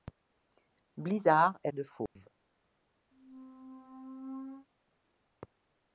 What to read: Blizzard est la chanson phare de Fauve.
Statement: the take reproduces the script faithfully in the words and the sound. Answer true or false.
false